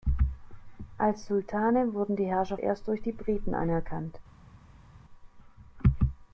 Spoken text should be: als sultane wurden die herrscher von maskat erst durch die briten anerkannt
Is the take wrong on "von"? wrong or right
wrong